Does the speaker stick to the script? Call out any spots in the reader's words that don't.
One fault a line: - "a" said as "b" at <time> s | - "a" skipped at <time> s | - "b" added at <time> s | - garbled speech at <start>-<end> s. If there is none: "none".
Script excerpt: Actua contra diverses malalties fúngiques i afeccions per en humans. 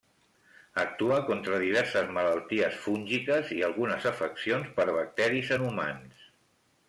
- "algunes" added at 3.7 s
- "bacteris" added at 5.0 s